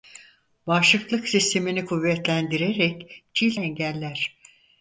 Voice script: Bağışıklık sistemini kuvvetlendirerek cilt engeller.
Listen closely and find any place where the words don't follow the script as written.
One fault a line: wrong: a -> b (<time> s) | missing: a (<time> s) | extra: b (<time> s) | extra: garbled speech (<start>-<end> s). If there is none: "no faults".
no faults